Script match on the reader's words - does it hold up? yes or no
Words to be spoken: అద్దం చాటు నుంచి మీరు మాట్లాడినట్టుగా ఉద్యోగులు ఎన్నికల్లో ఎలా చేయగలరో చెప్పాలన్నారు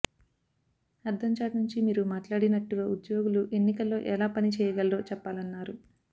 no